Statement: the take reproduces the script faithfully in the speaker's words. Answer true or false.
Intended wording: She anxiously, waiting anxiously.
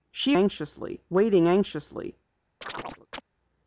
true